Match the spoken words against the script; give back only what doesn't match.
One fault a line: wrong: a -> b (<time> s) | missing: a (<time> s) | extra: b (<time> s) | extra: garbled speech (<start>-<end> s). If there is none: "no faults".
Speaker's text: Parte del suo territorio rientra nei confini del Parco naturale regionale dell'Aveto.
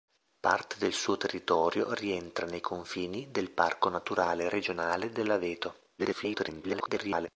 extra: garbled speech (6.0-7.3 s)